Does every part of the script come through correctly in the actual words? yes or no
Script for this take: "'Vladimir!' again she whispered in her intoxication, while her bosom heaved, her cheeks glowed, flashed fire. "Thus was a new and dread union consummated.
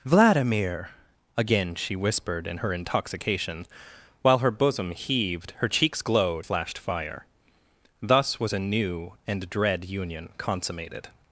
yes